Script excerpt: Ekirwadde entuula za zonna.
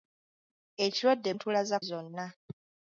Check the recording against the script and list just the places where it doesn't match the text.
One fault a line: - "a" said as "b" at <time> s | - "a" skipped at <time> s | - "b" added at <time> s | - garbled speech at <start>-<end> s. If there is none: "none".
none